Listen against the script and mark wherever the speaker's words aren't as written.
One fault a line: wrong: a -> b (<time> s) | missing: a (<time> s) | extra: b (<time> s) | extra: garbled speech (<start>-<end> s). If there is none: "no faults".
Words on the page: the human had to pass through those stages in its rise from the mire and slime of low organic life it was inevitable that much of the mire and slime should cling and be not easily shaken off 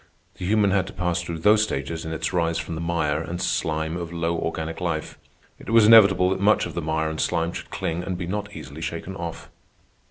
no faults